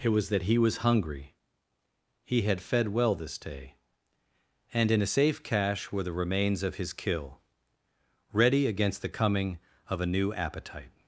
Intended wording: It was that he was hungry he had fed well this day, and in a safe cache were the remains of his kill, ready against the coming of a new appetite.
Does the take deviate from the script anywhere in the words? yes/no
no